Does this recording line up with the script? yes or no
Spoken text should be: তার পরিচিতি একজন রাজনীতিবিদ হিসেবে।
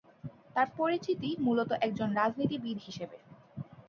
no